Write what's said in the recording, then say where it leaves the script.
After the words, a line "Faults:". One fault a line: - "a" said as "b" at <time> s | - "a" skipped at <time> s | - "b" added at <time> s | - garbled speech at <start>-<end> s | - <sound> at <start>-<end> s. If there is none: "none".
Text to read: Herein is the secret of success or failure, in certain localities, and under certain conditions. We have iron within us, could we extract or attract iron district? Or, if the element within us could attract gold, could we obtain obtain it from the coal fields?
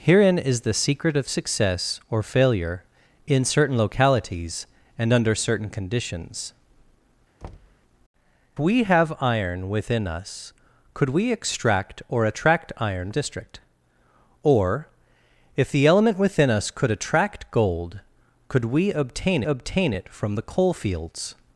Herein is the secret of success or failure, in certain localities, and under certain conditions. We have iron within us, could we extract or attract iron district? Or, if the element within us could attract gold, could we obtain obtain it from the coal fields?
Faults:
- thud at 7.4-7.8 s